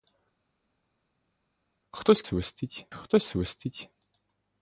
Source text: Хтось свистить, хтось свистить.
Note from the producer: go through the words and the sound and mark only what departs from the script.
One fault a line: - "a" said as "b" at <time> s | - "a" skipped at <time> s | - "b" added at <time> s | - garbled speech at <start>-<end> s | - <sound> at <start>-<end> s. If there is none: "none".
none